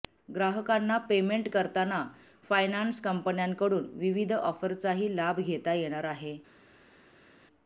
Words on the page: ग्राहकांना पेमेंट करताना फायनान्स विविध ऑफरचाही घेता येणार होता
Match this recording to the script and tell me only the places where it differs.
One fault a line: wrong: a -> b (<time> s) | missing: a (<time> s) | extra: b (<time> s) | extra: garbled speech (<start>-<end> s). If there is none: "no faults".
extra: कंपन्यांकडून (3.0 s)
extra: लाभ (5.2 s)
wrong: होता -> आहे (6.0 s)